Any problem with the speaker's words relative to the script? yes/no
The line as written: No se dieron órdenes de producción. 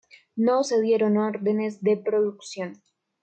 no